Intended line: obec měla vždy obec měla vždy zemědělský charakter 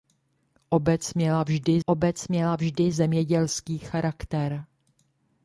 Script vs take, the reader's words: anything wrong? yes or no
no